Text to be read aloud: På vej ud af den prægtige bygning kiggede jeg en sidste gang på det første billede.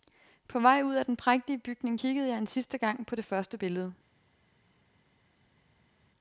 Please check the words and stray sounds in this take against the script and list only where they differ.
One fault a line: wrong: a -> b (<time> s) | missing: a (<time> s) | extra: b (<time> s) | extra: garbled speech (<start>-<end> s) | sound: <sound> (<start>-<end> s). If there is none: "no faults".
no faults